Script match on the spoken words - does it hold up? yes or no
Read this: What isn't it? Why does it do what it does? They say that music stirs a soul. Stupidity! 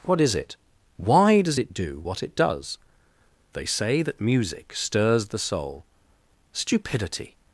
no